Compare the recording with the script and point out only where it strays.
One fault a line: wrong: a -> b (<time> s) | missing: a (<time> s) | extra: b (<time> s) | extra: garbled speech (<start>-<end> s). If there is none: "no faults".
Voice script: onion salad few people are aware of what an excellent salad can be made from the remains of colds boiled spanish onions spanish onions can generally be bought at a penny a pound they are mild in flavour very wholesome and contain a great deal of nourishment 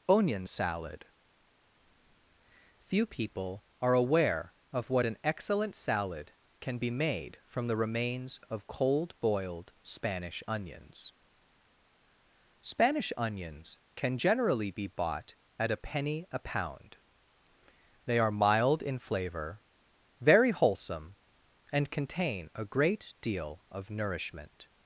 wrong: colds -> cold (8.7 s)